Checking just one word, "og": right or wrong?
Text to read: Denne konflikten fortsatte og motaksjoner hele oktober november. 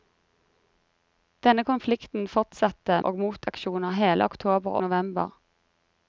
right